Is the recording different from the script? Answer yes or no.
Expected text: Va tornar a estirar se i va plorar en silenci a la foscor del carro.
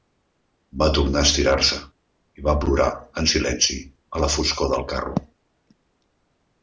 no